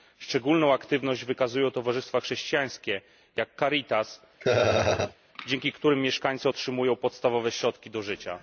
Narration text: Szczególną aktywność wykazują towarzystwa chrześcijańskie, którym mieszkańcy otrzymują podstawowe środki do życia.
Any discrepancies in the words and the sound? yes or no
yes